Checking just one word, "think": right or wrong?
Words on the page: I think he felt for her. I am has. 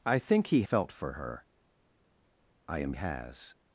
right